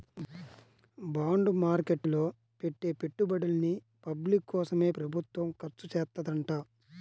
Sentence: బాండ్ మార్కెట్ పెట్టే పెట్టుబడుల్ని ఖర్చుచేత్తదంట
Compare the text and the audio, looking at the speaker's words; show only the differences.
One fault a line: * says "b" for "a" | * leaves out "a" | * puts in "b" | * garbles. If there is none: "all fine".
* puts in "లో"
* puts in "పబ్లిక్ కోసమే ప్రభుత్వం"